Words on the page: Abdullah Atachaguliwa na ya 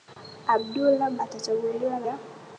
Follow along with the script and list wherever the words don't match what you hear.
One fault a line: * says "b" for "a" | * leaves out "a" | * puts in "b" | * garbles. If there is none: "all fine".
all fine